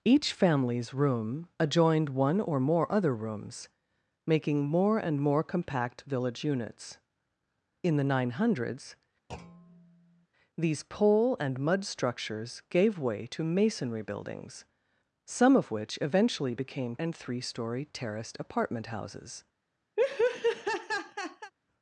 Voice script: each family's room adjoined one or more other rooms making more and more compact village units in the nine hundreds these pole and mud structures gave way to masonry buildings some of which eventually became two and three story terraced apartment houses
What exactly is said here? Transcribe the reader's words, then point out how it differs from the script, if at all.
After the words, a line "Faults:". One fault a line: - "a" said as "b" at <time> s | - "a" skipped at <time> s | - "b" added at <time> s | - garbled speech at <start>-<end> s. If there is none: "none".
each family's room adjoined one or more other rooms making more and more compact village units in the nine hundreds these pole and mud structures gave way to masonry buildings some of which eventually became and three story terraced apartment houses
Faults:
- "two" skipped at 17.0 s